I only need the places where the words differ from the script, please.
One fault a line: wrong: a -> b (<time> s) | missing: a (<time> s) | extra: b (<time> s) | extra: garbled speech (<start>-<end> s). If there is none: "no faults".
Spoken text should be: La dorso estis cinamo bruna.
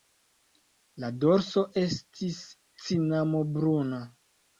no faults